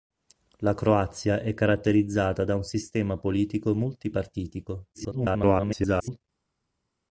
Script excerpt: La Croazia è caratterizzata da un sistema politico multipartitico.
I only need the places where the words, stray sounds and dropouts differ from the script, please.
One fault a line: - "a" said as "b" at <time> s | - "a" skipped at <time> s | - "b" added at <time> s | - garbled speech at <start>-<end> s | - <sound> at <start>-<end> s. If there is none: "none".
- garbled speech at 4.9-6.2 s